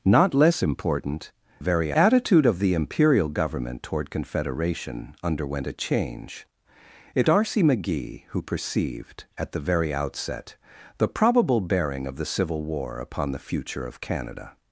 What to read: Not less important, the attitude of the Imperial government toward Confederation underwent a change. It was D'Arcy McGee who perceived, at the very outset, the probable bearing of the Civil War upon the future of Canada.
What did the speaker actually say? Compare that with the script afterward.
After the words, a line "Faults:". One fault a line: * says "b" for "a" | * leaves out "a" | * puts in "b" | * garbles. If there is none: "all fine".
Not less important, very attitude of the Imperial government toward Confederation underwent a change. It D'Arcy McGee who perceived, at the very outset, the probable bearing of the Civil War upon the future of Canada.
Faults:
* says "very" for "the"
* leaves out "was"